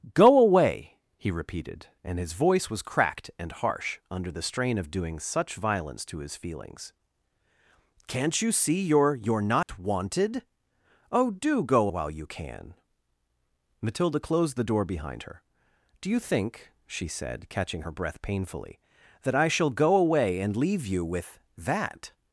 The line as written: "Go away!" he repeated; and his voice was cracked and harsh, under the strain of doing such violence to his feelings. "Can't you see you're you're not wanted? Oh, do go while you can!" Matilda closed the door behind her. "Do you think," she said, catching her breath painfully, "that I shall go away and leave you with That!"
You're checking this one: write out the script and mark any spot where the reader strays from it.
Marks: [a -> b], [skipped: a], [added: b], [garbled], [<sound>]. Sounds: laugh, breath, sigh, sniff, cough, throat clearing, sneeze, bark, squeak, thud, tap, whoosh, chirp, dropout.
"Go away!" he repeated; and his voice was cracked and harsh, under the strain of doing such violence to his feelings. "Can't you see you're you're not [dropout] wanted? Oh, do go while you can!" Matilda closed the door behind her. "Do you think," she said, catching her breath painfully, "that I shall go away and leave you with That!"